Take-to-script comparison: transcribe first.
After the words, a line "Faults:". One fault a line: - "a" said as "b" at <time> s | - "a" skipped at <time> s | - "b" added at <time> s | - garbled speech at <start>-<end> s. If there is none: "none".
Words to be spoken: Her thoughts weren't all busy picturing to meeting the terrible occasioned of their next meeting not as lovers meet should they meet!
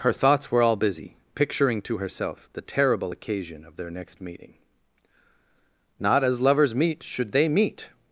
Her thoughts were all busy picturing to herself the terrible occasion of their next meeting not as lovers meet should they meet!
Faults:
- "weren't" said as "were" at 0.5 s
- "meeting" said as "herself" at 2.0 s
- "occasioned" said as "occasion" at 3.1 s